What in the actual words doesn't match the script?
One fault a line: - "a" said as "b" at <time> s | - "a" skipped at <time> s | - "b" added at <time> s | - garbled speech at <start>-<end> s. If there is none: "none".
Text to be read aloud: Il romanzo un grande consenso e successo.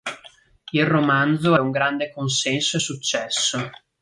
none